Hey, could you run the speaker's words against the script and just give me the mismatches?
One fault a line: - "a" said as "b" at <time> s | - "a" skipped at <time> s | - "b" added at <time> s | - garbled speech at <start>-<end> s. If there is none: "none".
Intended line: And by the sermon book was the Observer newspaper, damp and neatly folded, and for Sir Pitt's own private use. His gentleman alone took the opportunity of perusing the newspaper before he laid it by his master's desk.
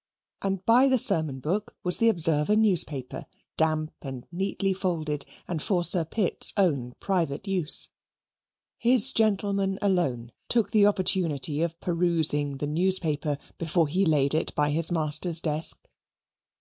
none